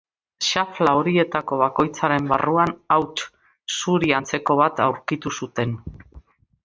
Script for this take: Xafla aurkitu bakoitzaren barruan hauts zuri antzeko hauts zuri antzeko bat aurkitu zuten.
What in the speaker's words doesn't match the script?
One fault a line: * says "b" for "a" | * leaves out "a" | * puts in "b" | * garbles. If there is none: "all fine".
* says "horietako" for "aurkitu"
* leaves out "hauts zuri antzeko"